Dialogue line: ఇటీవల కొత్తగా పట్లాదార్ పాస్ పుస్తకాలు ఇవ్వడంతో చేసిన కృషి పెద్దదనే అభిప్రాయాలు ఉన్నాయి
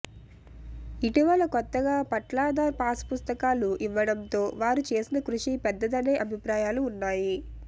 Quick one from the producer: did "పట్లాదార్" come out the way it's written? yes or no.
yes